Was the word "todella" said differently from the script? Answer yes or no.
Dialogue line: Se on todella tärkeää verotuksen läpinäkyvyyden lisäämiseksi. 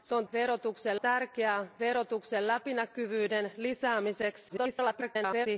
yes